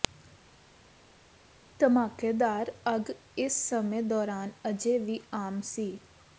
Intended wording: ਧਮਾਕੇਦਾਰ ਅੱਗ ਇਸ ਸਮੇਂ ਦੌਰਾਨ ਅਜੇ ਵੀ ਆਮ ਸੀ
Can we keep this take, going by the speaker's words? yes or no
yes